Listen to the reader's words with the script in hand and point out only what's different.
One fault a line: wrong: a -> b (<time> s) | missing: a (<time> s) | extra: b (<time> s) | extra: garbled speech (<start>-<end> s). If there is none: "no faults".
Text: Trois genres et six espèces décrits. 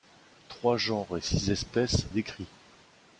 no faults